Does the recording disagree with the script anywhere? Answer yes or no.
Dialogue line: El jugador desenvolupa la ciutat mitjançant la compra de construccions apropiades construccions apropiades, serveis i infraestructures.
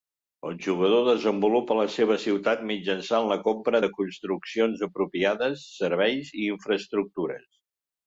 yes